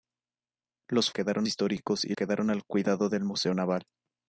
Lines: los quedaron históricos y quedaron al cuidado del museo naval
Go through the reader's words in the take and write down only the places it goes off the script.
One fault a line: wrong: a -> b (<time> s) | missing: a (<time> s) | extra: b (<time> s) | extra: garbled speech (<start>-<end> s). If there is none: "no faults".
no faults